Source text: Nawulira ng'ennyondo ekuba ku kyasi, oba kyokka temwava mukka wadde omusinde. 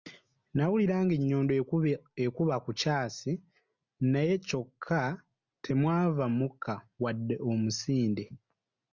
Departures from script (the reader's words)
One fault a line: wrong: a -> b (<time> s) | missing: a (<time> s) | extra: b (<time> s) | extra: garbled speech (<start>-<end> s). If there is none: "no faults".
wrong: oba -> naye (4.1 s)